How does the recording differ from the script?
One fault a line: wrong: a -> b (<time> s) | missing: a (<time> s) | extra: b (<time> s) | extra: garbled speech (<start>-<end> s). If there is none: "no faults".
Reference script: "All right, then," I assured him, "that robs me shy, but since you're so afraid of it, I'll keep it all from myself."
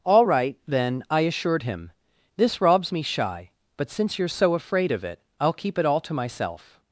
wrong: that -> this (2.4 s)
wrong: from -> to (6.0 s)